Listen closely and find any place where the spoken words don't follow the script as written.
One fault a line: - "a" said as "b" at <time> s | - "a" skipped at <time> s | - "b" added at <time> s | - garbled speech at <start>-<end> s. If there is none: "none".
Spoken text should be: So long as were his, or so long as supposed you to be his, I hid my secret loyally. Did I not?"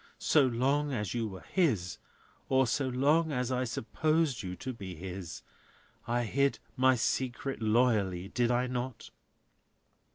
- "you" added at 1.1 s
- "I" added at 3.5 s